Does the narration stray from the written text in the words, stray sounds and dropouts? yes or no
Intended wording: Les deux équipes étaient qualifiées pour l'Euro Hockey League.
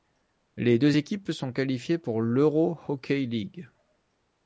yes